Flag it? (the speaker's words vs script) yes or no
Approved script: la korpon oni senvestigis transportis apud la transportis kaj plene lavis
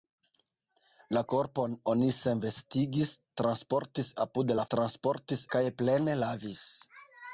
no